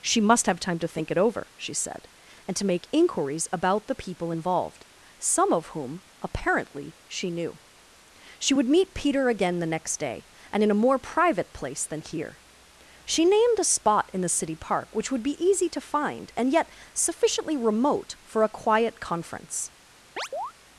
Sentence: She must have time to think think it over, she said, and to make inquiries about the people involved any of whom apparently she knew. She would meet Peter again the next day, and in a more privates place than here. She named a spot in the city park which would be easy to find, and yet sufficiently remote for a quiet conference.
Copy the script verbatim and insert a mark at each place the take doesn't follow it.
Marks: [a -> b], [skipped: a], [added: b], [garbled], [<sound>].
She must have time to think [skipped: think] it over, she said, and to make inquiries about the people involved [any -> some] of whom apparently she knew. She would meet Peter again the next day, and in a more [privates -> private] place than here. She named a spot in the city park which would be easy to find, and yet sufficiently remote for a quiet conference. [chirp]